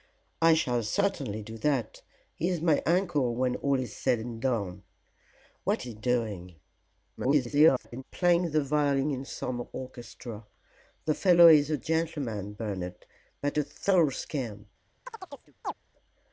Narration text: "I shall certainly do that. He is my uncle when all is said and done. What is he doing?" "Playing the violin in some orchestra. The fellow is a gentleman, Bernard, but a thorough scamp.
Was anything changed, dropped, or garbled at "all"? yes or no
no